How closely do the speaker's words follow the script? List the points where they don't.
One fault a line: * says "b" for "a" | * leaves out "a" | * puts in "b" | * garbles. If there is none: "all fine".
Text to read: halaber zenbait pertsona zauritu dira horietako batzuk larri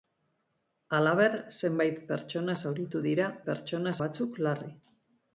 * says "pertsona" for "horietako"